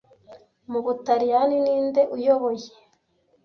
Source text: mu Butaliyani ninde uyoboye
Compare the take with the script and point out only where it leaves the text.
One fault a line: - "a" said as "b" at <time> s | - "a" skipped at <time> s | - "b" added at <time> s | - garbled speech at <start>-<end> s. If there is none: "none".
none